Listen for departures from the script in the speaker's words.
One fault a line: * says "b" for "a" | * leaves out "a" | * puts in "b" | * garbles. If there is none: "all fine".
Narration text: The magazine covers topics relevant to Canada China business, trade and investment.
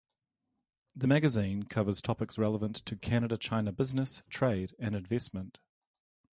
all fine